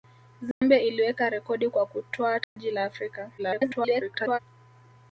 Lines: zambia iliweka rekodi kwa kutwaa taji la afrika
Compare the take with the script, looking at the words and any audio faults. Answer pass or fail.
fail